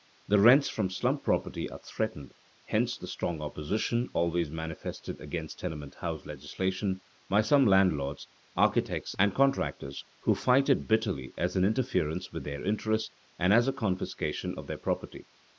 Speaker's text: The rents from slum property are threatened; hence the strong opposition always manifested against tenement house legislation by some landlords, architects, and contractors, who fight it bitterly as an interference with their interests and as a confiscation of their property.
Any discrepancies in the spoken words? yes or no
no